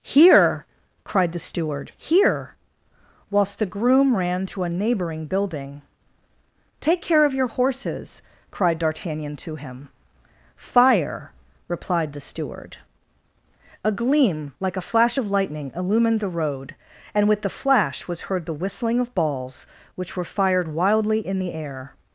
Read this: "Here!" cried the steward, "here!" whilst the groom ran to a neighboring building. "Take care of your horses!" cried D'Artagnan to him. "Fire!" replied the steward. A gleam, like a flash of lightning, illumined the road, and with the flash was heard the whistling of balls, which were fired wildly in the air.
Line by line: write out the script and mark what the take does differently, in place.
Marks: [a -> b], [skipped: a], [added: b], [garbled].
"Here!" cried the steward, "here!" whilst the groom ran to a neighboring building. "Take care of your horses!" cried D'Artagnan to him. "Fire!" replied the steward. A gleam, like a flash of lightning, illumined the road, and with the flash was heard the whistling of balls, which were fired wildly in the air.